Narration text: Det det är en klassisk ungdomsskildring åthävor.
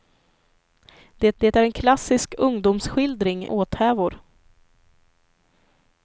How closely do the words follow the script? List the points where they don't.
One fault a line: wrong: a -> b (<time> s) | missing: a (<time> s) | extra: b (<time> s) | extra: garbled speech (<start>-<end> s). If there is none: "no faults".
no faults